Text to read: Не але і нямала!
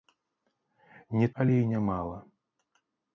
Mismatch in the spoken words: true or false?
false